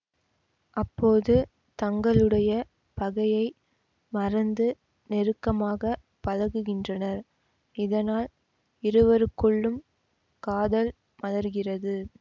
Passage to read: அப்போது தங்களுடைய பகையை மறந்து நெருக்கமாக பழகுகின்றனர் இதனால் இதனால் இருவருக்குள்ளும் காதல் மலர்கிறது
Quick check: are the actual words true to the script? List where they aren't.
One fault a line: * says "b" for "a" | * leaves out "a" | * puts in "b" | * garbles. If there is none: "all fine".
* leaves out "இதனால்"